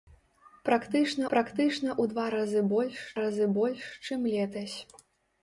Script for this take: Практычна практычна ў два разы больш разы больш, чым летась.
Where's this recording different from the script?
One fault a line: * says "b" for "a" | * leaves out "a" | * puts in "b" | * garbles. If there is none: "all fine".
all fine